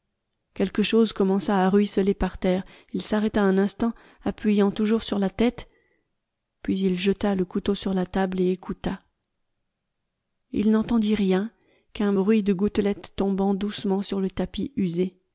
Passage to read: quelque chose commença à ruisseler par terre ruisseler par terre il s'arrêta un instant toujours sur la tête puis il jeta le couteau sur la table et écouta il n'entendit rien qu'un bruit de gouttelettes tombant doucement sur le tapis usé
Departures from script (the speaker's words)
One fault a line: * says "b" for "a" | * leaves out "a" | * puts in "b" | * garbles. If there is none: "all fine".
* leaves out "ruisseler par terre"
* puts in "appuyant"